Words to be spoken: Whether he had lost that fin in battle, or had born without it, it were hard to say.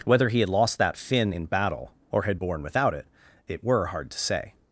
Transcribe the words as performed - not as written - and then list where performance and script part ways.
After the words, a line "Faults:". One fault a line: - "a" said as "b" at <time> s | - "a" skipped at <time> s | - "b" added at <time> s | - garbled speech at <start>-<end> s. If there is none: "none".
Whether he had lost that fin in battle, or had born without it, it were hard to say.
Faults:
none